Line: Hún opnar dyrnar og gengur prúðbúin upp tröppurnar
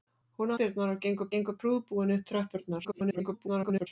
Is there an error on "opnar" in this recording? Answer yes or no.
yes